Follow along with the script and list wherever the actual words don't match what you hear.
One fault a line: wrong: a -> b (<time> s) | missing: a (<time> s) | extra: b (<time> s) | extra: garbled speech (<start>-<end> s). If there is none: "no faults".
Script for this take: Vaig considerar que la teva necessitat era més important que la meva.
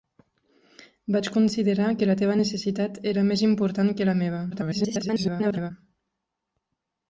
extra: garbled speech (4.5-5.7 s)